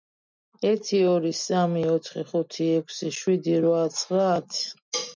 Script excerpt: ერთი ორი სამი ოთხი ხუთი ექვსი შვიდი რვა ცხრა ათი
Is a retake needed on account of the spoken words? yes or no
no